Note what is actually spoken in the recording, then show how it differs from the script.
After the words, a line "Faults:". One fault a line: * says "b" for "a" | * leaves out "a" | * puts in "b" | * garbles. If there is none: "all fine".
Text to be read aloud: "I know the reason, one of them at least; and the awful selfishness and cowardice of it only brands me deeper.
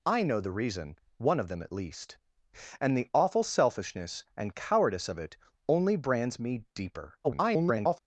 "I know the reason, one of them at least; and the awful selfishness and cowardice of it only brands me deeper. [garbled]
Faults:
* garbles